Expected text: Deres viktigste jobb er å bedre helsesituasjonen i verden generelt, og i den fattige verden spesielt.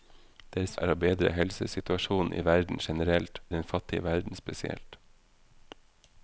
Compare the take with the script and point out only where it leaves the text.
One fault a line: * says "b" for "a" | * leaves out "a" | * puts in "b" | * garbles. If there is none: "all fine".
* leaves out "viktigste jobb"
* leaves out "og"